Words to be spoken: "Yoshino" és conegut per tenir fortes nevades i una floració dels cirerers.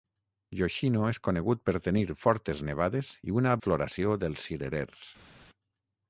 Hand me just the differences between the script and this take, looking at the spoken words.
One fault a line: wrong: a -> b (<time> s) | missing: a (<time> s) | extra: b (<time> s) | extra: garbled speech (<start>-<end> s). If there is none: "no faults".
no faults